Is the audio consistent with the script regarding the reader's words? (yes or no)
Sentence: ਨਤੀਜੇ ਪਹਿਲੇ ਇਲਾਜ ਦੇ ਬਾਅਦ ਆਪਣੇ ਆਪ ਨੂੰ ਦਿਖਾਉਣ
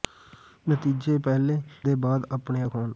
no